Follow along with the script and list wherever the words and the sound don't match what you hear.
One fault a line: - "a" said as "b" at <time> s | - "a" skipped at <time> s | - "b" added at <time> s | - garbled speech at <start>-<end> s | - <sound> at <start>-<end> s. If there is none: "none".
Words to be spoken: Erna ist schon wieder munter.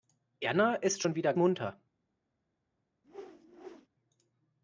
- whoosh at 3.0-3.9 s